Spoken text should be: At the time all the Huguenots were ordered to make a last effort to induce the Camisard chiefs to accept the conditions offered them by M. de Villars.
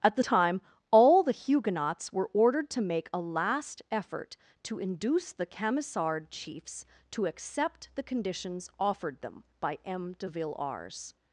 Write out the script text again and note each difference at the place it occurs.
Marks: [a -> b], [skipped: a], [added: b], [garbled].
At the time all the Huguenots were ordered to make a last effort to induce the Camisard chiefs to accept the conditions offered them by M. de Villars.